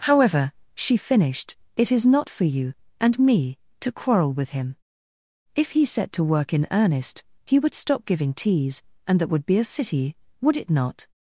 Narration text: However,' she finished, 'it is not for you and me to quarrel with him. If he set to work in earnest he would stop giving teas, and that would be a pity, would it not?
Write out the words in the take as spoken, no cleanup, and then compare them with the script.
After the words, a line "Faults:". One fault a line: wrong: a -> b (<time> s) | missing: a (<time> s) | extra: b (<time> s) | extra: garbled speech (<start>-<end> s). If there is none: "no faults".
However,' she finished, 'it is not for you and me to quarrel with him. If he set to work in earnest he would stop giving teas, and that would be a city, would it not?
Faults:
wrong: pity -> city (9.6 s)